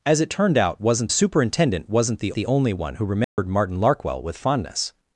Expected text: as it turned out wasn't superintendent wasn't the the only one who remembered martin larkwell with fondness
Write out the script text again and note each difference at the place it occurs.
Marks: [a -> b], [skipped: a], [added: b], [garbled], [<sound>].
as it turned out wasn't superintendent wasn't the the only one who remembered [dropout] martin larkwell with fondness